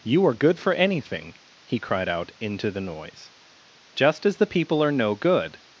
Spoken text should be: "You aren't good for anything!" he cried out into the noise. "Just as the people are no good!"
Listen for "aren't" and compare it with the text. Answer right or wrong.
wrong